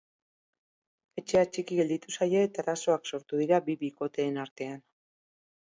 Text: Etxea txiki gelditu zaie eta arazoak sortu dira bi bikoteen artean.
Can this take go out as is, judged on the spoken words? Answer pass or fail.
pass